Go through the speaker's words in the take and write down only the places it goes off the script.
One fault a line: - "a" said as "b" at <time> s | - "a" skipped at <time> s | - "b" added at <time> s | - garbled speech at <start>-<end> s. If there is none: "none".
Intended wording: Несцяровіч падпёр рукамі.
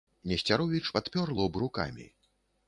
- "лоб" added at 1.4 s